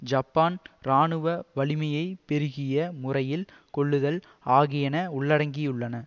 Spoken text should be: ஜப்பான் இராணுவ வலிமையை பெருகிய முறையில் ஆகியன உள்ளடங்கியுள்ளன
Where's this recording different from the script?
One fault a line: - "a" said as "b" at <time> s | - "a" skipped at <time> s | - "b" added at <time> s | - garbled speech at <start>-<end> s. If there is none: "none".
- "கொள்ளுதல்" added at 3.7 s